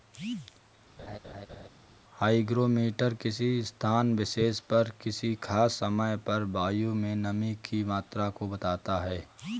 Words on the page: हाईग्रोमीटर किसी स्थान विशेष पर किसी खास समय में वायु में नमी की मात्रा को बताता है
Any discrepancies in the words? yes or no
yes